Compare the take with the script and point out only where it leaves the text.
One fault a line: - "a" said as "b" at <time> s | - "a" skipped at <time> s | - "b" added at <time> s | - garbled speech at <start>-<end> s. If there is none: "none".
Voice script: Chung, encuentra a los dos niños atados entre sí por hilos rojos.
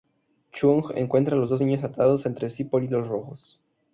none